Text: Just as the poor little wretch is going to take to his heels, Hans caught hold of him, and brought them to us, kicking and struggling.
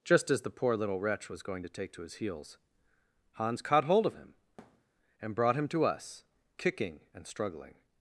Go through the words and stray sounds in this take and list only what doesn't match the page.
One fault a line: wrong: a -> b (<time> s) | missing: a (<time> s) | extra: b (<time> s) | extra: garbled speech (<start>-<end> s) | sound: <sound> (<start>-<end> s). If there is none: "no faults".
wrong: is -> was (1.3 s)
sound: thud (4.6-4.9 s)
wrong: them -> him (5.5 s)